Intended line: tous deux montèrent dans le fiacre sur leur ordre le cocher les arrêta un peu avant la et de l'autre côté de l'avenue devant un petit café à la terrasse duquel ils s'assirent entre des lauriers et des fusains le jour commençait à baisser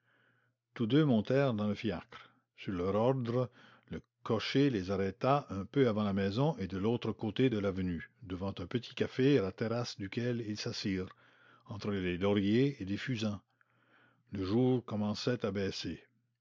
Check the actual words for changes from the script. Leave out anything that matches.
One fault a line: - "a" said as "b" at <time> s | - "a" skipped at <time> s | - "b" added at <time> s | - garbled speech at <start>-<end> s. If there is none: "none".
- "maison" added at 6.1 s